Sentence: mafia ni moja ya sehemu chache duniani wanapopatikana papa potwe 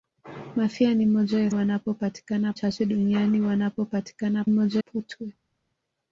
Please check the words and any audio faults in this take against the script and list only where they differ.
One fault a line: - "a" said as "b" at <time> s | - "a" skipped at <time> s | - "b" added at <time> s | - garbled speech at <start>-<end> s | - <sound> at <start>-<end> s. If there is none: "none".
- "sehemu" said as "wanapopatikana" at 1.5 s
- "papa" said as "moja" at 4.5 s